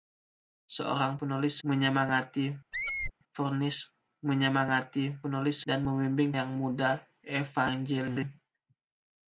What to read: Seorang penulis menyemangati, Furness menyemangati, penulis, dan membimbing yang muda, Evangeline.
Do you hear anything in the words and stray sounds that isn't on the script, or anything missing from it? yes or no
yes